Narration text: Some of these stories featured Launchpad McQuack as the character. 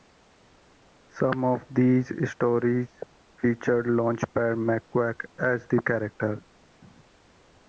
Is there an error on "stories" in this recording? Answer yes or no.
no